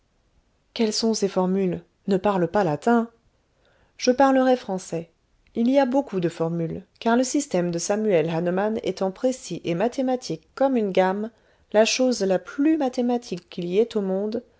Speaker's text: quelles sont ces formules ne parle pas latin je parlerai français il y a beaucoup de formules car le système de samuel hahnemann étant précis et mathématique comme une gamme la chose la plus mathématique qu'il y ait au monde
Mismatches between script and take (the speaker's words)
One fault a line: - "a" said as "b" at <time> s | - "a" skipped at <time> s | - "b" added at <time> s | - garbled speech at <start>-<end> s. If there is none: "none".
none